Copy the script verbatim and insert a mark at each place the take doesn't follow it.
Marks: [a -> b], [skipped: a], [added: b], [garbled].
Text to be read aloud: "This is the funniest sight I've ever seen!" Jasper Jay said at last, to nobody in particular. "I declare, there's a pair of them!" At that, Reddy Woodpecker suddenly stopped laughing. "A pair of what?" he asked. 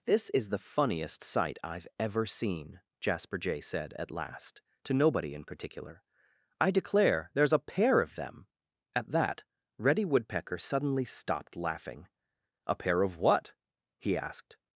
"This is the funniest sight I've ever seen!" Jasper Jay said at last, to nobody in particular. "I declare, there's a pair of them!" At that, Reddy Woodpecker suddenly stopped laughing. "A pair of what?" he asked.